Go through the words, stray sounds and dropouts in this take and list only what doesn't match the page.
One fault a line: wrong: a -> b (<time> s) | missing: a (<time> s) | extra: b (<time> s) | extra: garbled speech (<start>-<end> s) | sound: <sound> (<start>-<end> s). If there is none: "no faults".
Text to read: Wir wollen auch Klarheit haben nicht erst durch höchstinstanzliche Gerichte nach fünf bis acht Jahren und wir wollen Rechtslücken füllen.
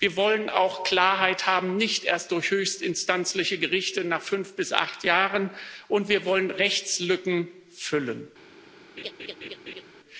sound: laugh (9.0-9.8 s)